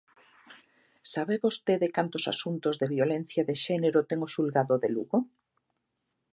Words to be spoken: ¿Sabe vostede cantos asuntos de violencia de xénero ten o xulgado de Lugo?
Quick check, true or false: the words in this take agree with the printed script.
true